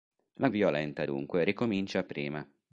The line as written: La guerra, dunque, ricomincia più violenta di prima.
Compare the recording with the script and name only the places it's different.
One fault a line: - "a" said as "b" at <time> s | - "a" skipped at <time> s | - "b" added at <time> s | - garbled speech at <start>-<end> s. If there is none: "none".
- "guerra" said as "violenta" at 0.5 s
- "più violenta di" skipped at 2.0 s